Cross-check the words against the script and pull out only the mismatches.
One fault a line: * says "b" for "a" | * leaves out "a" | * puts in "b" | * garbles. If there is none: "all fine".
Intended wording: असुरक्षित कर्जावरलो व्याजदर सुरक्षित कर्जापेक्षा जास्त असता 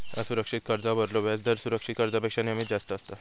* puts in "नेहमीच"